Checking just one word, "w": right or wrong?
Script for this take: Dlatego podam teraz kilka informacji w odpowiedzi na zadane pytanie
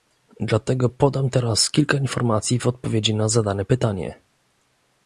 right